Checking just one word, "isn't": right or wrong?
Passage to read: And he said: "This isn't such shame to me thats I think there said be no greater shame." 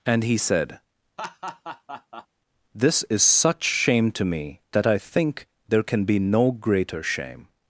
wrong